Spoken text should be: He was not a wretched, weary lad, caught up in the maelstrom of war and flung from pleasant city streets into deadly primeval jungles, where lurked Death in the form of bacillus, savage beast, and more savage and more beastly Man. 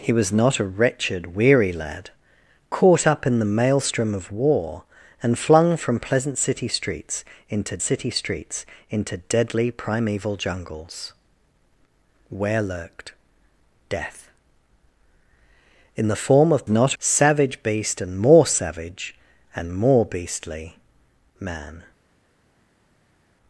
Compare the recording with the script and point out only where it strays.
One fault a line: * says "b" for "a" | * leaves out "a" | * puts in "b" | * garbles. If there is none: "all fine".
* puts in "city streets into"
* says "not" for "bacillus"